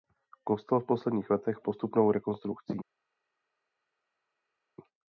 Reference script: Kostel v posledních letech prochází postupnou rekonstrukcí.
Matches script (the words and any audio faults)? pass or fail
fail